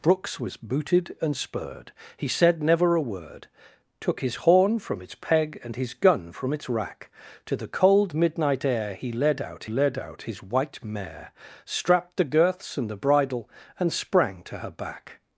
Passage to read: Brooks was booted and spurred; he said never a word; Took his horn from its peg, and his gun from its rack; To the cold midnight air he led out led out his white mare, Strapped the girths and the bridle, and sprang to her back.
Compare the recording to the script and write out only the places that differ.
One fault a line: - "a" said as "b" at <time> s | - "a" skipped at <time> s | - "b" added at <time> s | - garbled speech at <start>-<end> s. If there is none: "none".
none